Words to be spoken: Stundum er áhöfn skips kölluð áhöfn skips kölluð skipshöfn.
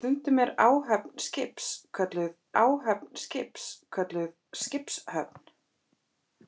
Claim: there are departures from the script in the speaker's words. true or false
false